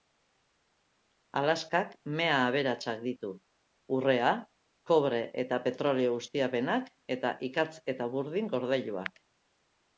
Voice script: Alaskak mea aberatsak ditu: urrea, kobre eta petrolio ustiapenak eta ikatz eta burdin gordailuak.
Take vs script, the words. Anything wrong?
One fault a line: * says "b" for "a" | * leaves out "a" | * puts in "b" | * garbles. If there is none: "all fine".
all fine